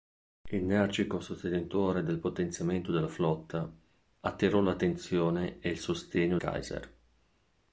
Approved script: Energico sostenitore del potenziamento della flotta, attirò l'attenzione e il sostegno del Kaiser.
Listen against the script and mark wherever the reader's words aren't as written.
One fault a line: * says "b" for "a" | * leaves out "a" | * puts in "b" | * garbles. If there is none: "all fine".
* leaves out "del"